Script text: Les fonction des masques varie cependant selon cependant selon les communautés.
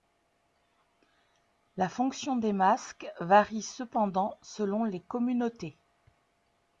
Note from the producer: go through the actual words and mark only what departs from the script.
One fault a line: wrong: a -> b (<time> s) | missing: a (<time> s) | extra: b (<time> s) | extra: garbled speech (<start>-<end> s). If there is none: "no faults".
wrong: Les -> La (1.8 s)
missing: cependant selon (4.8 s)